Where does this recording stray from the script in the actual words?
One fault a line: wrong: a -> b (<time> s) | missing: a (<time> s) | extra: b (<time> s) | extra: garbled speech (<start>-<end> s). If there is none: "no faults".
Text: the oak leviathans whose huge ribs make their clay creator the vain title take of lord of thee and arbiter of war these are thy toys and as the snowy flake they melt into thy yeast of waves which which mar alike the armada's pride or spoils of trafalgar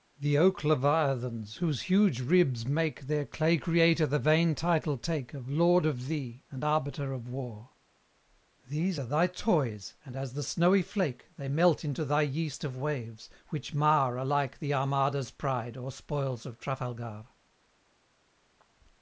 missing: which (13.7 s)